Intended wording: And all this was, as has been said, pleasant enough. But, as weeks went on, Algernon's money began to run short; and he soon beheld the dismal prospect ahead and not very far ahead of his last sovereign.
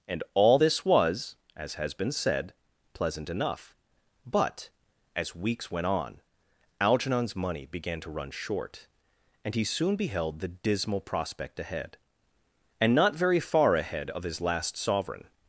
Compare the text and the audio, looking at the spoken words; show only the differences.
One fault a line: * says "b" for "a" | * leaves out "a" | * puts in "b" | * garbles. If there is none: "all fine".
all fine